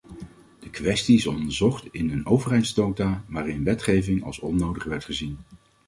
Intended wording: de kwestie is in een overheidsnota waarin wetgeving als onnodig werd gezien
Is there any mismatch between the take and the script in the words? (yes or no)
yes